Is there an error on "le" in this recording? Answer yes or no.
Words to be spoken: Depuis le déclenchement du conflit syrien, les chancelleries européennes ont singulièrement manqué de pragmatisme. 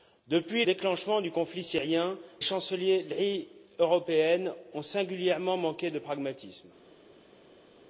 yes